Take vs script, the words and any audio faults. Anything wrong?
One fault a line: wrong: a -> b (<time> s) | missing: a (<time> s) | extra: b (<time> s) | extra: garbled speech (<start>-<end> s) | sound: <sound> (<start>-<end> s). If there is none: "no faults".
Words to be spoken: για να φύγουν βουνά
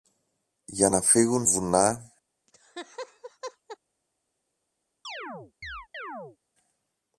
sound: laugh (2.5-3.8 s)
sound: chirp (5.0-6.4 s)